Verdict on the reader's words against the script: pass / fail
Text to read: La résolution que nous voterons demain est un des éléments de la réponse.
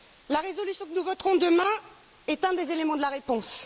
pass